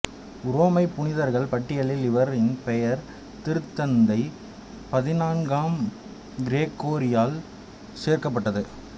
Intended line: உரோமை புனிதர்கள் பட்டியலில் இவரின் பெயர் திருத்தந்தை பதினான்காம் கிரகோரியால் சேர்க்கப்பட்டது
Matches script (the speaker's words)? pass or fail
pass